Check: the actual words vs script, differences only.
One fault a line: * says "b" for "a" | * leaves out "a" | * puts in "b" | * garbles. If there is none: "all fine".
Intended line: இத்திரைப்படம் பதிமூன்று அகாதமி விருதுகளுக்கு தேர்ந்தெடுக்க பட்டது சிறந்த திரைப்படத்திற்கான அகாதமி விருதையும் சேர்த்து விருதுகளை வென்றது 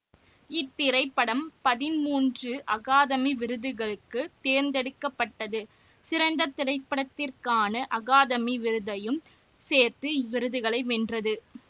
all fine